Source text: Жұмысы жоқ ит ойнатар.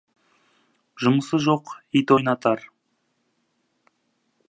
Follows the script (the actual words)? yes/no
yes